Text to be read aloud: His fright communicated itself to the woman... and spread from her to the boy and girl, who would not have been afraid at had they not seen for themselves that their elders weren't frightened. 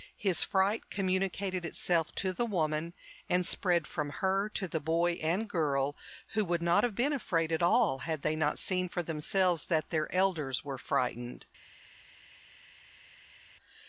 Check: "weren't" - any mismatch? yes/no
yes